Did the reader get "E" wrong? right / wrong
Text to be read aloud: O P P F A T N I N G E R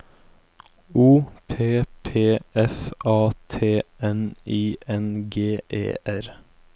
right